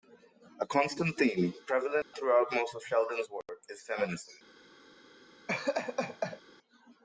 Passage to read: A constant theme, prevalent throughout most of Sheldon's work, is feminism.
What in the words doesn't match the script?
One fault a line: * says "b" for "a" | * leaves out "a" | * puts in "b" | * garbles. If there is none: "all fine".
all fine